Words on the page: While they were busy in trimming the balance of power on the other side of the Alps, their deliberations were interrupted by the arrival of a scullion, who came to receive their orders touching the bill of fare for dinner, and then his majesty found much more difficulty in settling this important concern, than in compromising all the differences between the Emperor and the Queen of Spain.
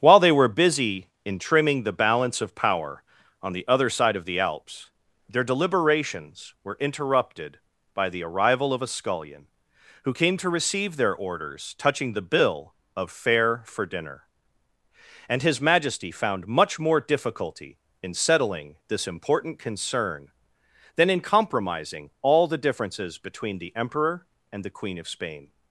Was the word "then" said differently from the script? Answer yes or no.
yes